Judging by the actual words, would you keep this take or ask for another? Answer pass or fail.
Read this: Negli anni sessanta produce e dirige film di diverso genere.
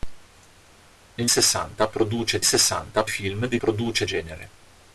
fail